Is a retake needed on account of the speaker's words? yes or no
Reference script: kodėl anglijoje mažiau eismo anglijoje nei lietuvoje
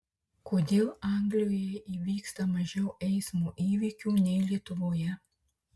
yes